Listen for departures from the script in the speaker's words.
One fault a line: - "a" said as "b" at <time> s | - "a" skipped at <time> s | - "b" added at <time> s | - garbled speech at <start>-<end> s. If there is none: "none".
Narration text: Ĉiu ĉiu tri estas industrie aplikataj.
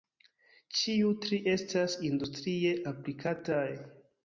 - "ĉiu" skipped at 1.1 s